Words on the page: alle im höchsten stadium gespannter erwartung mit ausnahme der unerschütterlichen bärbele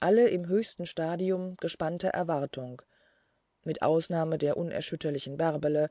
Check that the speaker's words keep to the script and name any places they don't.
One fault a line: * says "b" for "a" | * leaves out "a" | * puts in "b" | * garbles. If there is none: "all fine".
all fine